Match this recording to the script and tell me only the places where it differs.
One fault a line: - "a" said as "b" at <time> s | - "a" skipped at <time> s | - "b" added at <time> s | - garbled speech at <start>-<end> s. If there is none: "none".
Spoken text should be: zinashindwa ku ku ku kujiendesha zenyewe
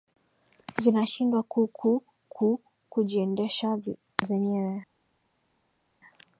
none